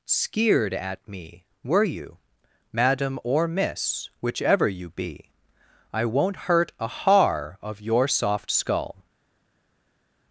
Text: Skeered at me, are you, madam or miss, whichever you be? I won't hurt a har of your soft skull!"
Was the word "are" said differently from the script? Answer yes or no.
yes